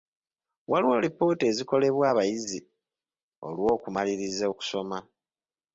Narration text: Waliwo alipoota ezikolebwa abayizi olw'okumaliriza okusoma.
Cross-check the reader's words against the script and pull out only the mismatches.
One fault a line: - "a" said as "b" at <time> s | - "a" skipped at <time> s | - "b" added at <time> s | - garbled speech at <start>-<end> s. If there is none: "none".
none